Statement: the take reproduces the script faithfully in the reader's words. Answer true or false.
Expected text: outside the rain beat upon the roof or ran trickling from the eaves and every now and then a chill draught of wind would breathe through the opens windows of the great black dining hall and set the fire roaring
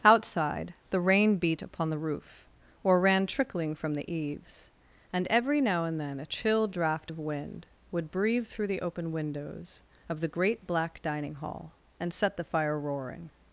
false